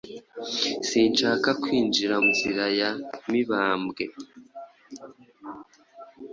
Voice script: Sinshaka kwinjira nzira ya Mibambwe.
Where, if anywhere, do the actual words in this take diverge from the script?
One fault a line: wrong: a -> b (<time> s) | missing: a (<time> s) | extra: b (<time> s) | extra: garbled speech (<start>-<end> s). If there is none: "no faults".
no faults